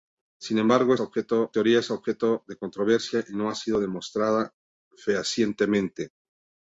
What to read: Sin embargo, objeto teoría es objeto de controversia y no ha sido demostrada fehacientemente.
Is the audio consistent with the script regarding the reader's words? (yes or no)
yes